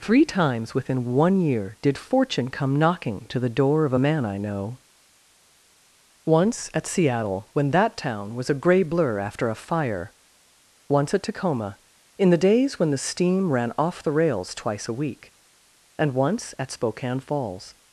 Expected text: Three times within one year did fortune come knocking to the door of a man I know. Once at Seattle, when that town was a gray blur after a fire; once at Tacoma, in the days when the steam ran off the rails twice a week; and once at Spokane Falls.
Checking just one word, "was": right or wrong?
right